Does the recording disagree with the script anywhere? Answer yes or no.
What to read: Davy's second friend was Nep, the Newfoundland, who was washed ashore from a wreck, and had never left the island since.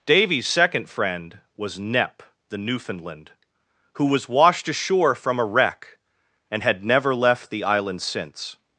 no